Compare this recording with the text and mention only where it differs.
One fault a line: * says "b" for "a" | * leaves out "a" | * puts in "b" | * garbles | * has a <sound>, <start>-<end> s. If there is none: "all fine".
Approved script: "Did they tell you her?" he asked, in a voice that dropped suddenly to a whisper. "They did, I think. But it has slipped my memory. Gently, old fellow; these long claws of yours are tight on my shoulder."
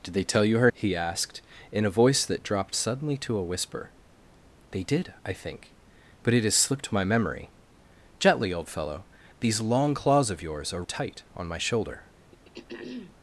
* has a throat clearing, 12.3-13.1 s